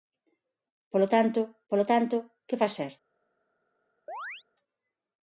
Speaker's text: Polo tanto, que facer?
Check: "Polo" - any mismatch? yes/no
no